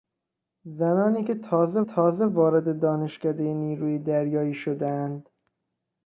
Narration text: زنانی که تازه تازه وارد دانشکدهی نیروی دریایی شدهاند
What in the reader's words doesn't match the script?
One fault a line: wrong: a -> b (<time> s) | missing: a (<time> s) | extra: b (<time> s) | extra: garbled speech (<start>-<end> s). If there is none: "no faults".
no faults